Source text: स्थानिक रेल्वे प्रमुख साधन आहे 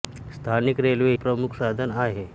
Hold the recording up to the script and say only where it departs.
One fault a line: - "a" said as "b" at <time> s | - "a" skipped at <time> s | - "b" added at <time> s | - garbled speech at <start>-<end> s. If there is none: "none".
none